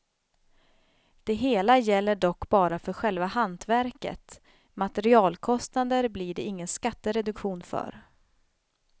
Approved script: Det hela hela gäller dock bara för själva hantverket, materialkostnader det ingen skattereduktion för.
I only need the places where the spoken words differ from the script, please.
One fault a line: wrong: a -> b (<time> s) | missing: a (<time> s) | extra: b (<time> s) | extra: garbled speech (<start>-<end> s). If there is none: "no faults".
missing: hela (1.8 s)
extra: blir (6.1 s)